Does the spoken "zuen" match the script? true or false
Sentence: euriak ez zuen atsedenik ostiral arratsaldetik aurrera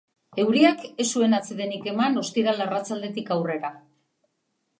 true